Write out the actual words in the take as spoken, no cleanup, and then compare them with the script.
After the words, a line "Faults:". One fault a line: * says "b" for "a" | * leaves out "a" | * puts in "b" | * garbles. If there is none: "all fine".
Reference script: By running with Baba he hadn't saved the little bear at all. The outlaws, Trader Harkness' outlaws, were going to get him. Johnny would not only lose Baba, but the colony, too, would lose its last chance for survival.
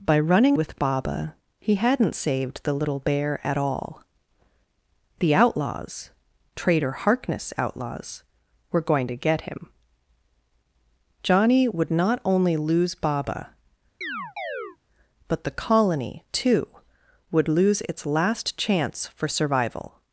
By running with Baba he hadn't saved the little bear at all. The outlaws, Trader Harkness' outlaws, were going to get him. Johnny would not only lose Baba, but the colony, too, would lose its last chance for survival.
Faults:
all fine